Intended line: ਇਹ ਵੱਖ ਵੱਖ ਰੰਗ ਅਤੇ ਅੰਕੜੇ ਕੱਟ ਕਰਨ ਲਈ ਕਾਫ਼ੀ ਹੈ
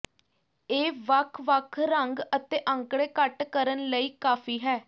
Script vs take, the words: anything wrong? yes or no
no